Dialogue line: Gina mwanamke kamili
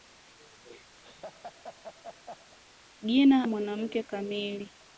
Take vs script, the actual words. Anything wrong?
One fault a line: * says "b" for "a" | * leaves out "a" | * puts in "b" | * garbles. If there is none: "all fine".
all fine